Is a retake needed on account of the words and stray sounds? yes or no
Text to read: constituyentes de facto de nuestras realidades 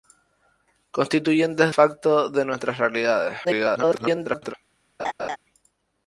yes